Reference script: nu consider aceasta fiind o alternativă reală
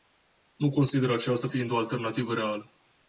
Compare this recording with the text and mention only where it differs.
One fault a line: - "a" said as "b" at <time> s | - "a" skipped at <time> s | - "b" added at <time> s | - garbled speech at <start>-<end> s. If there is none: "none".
none